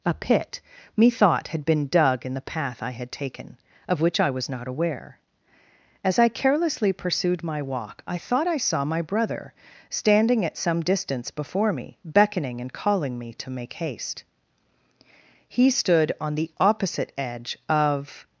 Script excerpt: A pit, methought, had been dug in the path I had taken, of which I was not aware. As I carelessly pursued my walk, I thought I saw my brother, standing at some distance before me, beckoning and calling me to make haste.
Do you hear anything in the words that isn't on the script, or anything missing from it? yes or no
yes